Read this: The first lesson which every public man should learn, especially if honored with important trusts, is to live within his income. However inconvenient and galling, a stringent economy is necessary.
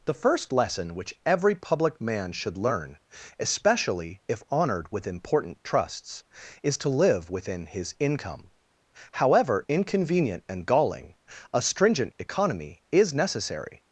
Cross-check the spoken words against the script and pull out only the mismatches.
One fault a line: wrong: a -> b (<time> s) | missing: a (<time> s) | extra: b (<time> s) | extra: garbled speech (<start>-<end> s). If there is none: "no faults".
no faults